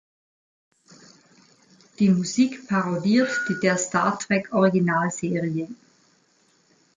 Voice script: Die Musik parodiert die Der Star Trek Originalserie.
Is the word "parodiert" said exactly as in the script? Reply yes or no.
yes